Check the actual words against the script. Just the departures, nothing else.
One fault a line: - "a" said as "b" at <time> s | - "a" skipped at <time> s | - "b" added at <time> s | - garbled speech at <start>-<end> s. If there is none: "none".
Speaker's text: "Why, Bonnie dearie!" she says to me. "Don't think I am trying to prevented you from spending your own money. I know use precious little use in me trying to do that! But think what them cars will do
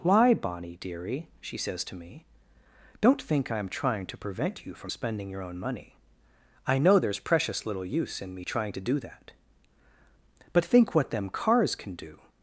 - "prevented" said as "prevent" at 4.2 s
- "use" said as "there's" at 7.0 s
- "will" said as "can" at 11.8 s